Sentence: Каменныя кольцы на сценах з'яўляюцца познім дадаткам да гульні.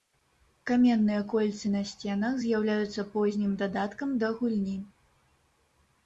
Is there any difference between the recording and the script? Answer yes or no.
no